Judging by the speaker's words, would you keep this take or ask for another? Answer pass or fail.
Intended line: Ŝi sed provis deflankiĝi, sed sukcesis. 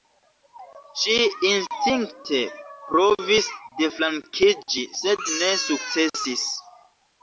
fail